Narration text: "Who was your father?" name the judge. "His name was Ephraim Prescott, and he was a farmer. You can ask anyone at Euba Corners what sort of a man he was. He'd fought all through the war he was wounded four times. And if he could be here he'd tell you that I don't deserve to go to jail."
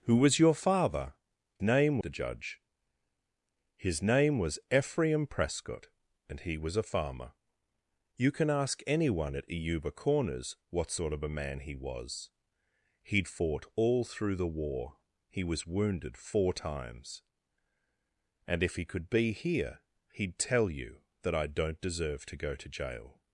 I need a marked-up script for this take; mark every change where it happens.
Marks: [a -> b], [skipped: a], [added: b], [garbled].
"Who was your father?" name the judge. "His name was Ephraim Prescott, and he was a farmer. You can ask anyone at Euba Corners what sort of a man he was. He'd fought all through the war he was wounded four times. And if he could be here he'd tell you that I don't deserve to go to jail."